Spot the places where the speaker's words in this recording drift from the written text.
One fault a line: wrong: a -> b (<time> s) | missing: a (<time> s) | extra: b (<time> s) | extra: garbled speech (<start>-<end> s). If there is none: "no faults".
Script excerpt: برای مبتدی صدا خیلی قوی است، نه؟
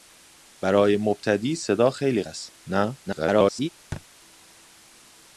missing: قوی (2.2 s)
extra: garbled speech (3.1-3.7 s)